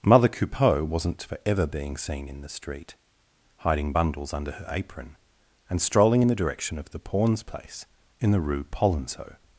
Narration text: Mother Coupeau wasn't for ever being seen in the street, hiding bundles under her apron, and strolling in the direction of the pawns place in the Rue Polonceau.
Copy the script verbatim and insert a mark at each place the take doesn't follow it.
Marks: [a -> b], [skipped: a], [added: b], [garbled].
Mother Coupeau wasn't for ever being seen in the street, hiding bundles under her apron, and strolling in the direction of the pawns place in the Rue Polonceau.